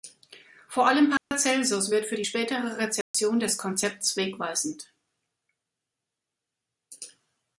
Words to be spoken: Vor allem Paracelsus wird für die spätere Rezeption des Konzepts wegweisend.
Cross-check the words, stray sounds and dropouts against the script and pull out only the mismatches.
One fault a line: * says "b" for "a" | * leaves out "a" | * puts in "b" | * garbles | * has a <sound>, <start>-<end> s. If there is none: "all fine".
* has a dropout, 1.2-1.3 s
* has a dropout, 3.0-3.1 s